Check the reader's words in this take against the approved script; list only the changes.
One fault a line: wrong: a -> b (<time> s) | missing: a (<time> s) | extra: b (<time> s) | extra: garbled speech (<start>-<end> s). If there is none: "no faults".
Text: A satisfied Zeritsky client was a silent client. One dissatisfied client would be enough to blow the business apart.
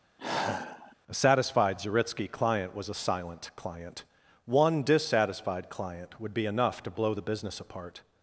no faults